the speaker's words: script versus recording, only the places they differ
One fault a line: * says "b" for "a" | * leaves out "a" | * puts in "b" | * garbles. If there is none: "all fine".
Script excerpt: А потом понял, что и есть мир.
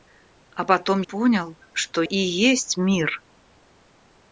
all fine